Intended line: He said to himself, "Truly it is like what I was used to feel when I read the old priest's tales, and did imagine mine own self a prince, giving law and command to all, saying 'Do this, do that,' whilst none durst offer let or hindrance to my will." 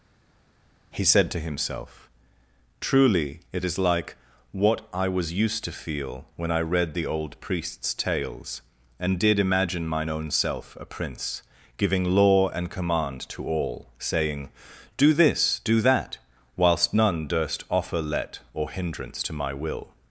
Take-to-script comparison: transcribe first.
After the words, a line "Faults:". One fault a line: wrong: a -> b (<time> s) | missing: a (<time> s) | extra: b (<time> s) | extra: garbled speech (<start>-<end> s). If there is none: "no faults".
He said to himself, "Truly it is like what I was used to feel when I read the old priest's tales, and did imagine mine own self a prince, giving law and command to all, saying 'Do this, do that,' whilst none durst offer let or hindrance to my will."
Faults:
no faults